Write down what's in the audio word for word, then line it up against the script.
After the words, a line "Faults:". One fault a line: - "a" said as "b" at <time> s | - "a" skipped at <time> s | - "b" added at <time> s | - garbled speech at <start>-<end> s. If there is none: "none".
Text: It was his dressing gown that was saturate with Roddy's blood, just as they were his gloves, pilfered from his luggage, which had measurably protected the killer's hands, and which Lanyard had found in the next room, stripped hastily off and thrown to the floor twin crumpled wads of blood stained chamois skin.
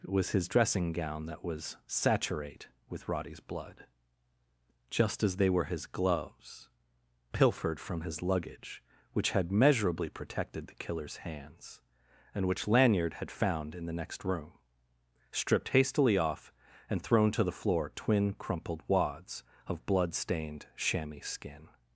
It was his dressing gown that was saturate with Roddy's blood, just as they were his gloves, pilfered from his luggage, which had measurably protected the killer's hands, and which Lanyard had found in the next room, stripped hastily off and thrown to the floor twin crumpled wads of blood stained chamois skin.
Faults:
none